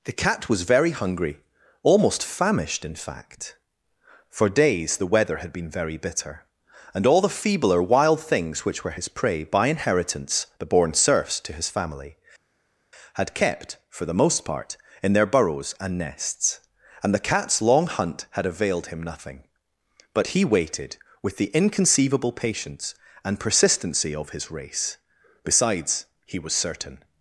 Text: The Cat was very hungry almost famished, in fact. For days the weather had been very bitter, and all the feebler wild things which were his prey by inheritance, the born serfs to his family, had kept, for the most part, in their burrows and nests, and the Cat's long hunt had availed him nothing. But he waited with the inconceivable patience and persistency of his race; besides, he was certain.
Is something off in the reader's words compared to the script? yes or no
no